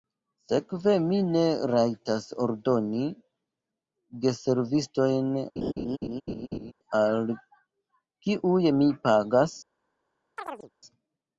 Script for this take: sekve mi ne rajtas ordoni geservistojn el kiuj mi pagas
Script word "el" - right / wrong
wrong